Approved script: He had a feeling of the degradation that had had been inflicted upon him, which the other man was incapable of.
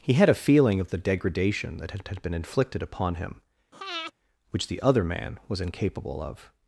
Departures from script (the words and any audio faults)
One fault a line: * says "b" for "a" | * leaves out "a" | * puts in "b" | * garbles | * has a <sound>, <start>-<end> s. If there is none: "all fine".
* has a breath, 3.7-4.1 s